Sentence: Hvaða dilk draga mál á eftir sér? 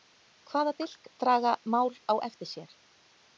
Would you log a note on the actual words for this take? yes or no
no